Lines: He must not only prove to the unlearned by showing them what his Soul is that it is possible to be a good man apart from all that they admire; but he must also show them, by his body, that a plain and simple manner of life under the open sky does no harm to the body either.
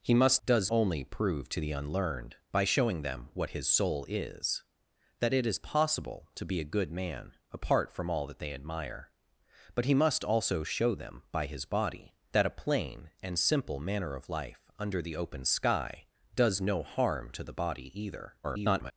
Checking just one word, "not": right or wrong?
wrong